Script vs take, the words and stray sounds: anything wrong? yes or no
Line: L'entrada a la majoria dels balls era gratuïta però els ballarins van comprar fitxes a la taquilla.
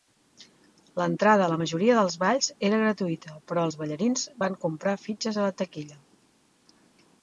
no